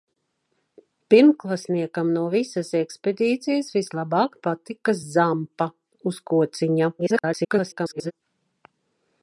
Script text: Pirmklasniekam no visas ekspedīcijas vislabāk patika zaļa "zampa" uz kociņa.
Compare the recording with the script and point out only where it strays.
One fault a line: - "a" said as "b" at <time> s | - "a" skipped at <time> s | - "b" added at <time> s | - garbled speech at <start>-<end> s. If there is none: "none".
- "zaļa" skipped at 5.0 s
- garbled speech at 7.0-8.1 s